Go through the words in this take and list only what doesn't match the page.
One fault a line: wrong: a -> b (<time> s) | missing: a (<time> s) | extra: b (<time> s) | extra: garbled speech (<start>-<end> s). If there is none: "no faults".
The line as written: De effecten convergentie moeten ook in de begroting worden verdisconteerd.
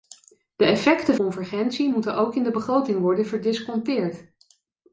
no faults